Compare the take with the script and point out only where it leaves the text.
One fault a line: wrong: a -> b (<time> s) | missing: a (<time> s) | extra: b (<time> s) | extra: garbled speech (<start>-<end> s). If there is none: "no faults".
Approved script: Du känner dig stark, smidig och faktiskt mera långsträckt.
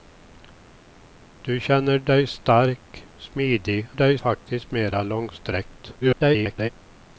wrong: och -> dig (3.9 s)
extra: garbled speech (6.0-6.7 s)